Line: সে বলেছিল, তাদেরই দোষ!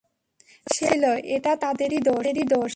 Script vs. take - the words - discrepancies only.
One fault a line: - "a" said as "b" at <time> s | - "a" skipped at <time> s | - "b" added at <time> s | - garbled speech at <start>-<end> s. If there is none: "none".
- "এটা" added at 1.4 s